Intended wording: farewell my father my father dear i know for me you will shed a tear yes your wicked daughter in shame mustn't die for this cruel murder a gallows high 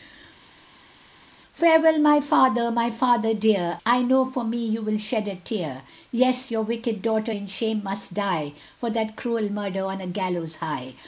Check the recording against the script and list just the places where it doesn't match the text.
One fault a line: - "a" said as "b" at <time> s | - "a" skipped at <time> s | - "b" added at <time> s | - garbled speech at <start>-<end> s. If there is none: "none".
- "mustn't" said as "must" at 7.8 s
- "this" said as "that" at 8.9 s
- "on" added at 9.9 s